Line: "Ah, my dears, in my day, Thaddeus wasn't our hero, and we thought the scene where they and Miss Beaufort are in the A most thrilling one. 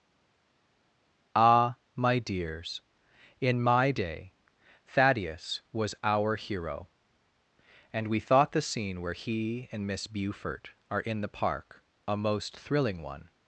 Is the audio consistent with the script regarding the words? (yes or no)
no